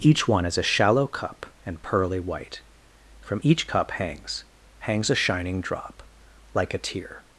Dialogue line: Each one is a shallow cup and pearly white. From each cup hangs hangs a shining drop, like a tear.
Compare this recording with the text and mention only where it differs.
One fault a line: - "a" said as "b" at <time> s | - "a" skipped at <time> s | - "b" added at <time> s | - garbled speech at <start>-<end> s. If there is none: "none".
none